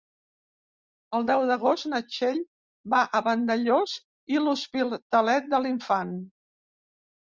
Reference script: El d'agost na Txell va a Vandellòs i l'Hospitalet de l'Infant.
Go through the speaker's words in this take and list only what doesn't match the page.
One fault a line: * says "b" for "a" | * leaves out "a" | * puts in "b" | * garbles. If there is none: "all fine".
* puts in "deu"